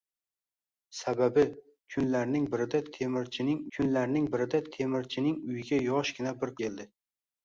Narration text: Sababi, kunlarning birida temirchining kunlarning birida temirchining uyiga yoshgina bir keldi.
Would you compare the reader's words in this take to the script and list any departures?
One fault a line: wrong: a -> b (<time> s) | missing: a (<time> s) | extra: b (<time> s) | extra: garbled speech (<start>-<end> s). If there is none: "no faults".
no faults